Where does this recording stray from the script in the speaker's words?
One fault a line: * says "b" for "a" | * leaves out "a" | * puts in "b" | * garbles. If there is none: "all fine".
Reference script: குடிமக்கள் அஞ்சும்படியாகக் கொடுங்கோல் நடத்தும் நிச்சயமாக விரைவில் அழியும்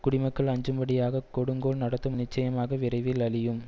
all fine